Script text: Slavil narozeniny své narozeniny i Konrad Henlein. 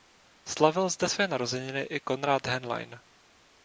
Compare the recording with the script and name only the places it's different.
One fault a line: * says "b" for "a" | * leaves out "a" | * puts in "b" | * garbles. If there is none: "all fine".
* says "zde" for "narozeniny"